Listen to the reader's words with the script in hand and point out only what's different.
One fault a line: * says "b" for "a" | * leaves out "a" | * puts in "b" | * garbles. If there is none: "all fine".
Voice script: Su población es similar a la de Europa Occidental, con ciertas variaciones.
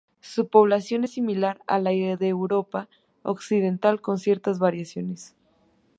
all fine